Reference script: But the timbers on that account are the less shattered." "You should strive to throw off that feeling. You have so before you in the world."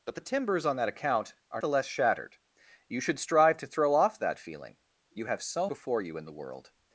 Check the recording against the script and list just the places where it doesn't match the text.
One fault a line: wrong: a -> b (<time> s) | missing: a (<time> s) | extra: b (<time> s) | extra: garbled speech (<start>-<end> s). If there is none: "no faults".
no faults